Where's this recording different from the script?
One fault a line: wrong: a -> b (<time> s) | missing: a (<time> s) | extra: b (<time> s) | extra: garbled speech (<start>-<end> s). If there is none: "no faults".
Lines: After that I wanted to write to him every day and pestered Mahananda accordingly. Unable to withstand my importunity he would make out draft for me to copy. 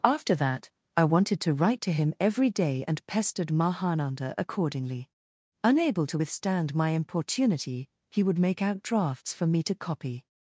wrong: draft -> drafts (8.8 s)